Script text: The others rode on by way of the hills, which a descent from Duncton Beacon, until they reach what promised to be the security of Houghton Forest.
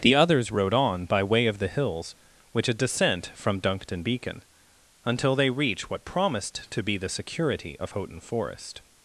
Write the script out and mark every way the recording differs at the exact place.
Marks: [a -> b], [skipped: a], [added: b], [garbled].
The others rode on by way of the hills, which a descent from Duncton Beacon, until they reach what promised to be the security of Houghton Forest.